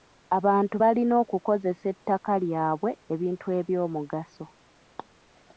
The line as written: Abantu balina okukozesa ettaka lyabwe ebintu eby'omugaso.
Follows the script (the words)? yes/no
yes